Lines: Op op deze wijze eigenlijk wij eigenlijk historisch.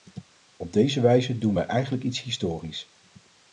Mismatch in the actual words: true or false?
true